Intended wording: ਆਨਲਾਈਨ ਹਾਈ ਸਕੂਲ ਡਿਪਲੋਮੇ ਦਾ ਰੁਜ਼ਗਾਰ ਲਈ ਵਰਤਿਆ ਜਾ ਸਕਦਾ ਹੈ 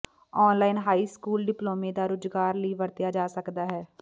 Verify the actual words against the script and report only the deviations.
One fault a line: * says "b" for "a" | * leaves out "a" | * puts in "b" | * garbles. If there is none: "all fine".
all fine